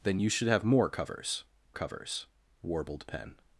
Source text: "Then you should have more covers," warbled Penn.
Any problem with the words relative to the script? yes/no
yes